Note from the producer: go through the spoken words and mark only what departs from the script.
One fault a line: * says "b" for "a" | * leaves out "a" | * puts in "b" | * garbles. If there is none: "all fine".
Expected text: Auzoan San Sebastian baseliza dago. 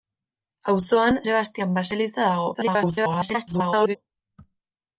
* leaves out "San"
* garbles